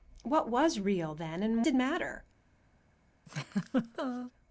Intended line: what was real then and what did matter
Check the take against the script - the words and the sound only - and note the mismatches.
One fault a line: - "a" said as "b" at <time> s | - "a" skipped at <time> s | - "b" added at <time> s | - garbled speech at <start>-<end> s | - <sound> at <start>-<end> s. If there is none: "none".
- "what" skipped at 1.6 s
- laugh at 3.3-4.3 s